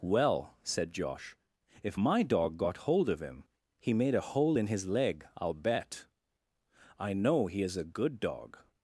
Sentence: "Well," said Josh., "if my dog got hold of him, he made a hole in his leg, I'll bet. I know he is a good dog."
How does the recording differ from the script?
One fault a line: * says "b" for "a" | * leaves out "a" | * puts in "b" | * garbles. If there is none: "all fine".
all fine